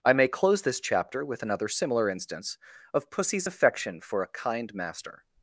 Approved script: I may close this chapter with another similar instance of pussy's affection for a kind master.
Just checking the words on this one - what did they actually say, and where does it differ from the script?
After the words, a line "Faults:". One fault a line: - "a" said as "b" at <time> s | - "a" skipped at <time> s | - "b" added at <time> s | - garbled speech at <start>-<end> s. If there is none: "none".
I may close this chapter with another similar instance of pussy's affection for a kind master.
Faults:
none